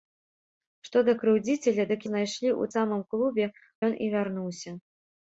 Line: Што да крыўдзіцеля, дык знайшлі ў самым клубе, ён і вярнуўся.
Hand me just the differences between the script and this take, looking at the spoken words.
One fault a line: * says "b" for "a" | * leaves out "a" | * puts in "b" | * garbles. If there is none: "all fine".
all fine